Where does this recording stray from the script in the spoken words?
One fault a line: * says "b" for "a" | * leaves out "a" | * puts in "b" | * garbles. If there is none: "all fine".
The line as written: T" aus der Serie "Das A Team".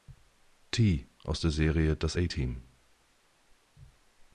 all fine